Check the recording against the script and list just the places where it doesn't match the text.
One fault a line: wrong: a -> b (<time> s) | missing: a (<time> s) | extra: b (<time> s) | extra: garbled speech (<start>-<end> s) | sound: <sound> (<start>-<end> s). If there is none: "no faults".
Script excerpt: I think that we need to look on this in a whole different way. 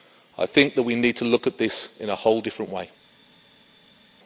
wrong: on -> at (1.5 s)